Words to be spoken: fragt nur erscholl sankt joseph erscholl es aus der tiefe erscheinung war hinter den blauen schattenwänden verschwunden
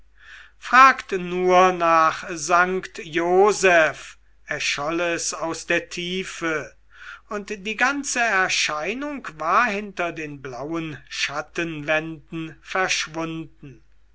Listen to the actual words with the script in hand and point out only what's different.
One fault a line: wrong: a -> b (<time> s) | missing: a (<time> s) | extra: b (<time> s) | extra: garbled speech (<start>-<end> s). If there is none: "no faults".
wrong: erscholl -> nach (1.7 s)
extra: und die ganze (7.3 s)